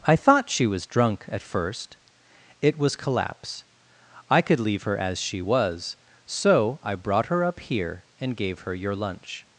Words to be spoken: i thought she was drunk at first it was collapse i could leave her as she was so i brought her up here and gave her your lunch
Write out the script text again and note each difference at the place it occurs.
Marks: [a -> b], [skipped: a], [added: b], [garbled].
i thought she was drunk at first it was collapse i could leave her as she was so i brought her up here and gave her your lunch